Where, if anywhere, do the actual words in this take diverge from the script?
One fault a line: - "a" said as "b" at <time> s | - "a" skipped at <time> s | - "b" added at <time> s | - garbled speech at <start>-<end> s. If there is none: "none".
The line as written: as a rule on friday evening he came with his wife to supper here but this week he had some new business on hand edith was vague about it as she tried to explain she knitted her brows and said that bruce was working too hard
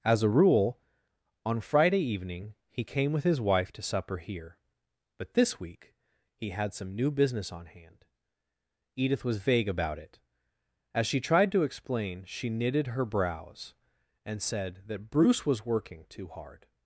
none